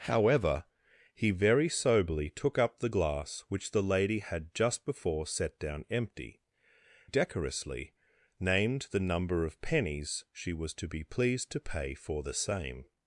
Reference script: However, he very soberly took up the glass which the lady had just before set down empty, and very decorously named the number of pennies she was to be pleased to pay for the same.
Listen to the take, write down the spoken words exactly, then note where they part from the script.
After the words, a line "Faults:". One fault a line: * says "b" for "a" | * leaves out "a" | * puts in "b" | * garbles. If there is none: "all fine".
However, he very soberly took up the glass which the lady had just before set down empty, decorously named the number of pennies she was to be pleased to pay for the same.
Faults:
* leaves out "and very"